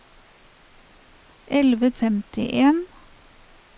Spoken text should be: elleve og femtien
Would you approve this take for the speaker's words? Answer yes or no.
yes